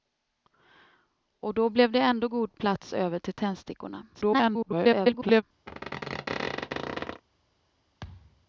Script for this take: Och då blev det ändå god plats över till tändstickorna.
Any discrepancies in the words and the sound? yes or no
yes